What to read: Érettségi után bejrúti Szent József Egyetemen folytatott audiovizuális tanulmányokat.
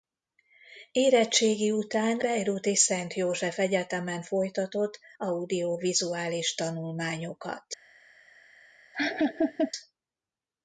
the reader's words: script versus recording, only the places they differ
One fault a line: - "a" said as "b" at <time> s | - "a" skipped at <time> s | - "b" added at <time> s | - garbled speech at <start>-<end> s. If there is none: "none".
none